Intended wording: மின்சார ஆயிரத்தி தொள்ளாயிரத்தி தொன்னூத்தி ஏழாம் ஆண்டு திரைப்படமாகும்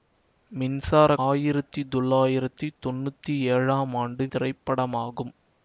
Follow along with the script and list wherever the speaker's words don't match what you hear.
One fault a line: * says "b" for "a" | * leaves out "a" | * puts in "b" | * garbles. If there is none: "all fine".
all fine